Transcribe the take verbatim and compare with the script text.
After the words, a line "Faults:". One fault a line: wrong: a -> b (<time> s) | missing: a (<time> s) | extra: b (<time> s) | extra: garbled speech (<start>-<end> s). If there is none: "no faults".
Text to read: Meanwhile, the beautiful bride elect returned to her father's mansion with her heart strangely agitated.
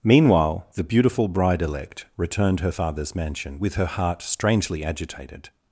Meanwhile, the beautiful bride elect returned her father's mansion with her heart strangely agitated.
Faults:
missing: to (2.6 s)